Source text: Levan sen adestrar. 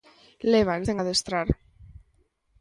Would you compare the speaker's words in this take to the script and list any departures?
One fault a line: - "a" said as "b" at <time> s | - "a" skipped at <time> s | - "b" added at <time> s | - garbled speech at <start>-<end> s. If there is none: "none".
none